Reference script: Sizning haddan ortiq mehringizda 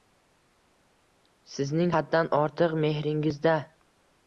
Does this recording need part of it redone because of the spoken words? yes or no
no